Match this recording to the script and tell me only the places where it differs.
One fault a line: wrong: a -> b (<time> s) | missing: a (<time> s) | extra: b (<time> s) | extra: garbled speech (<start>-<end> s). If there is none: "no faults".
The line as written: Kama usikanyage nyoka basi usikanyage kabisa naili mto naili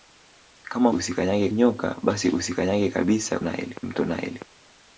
no faults